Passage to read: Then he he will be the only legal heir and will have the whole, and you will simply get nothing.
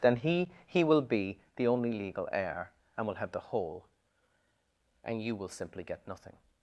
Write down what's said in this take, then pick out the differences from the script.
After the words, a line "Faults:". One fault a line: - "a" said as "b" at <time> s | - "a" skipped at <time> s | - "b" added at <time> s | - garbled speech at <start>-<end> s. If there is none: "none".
Then he he will be the only legal heir and will have the whole, and you will simply get nothing.
Faults:
none